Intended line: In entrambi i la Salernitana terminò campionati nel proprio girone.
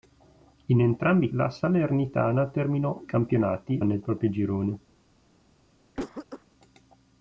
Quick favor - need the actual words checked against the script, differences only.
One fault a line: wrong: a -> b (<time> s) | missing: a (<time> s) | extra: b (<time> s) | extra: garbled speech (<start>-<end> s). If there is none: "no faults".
no faults